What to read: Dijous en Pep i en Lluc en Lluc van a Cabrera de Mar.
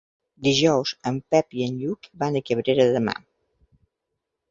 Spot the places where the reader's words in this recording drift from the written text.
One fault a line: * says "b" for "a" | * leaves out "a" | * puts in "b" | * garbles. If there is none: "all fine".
* leaves out "en Lluc"